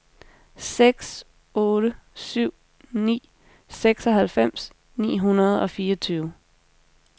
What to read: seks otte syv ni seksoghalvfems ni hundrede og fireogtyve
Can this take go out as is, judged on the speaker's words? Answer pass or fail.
pass